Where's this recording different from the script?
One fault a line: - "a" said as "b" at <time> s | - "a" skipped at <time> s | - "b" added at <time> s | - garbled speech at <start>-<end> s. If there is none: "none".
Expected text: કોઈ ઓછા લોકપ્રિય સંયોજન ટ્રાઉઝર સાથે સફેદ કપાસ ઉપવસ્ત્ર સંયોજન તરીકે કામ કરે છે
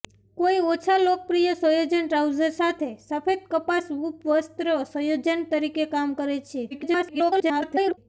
- garbled speech at 6.7-8.0 s